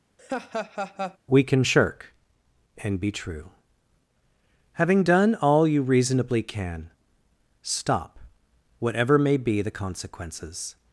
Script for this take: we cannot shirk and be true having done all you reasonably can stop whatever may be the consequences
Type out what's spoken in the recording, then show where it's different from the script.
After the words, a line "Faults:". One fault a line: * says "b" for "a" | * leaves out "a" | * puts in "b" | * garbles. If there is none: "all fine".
we can shirk and be true having done all you reasonably can stop whatever may be the consequences
Faults:
* says "can" for "cannot"